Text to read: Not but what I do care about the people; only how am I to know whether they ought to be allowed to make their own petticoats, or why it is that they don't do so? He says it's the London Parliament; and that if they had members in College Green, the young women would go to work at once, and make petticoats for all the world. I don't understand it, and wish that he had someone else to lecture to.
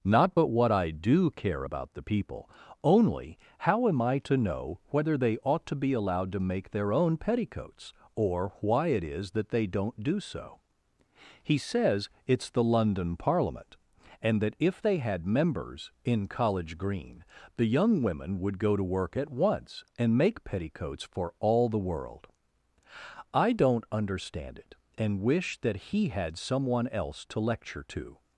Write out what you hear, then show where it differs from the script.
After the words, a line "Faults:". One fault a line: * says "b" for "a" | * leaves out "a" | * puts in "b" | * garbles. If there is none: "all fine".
Not but what I do care about the people; only how am I to know whether they ought to be allowed to make their own petticoats, or why it is that they don't do so? He says it's the London Parliament; and that if they had members in College Green, the young women would go to work at once, and make petticoats for all the world. I don't understand it, and wish that he had someone else to lecture to.
Faults:
all fine